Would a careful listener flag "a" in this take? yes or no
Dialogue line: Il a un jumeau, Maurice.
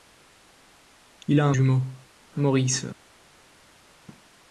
no